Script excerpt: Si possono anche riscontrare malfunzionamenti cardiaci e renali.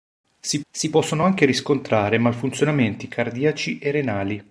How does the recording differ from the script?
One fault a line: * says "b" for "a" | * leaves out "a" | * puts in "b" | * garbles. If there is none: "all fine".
* puts in "si"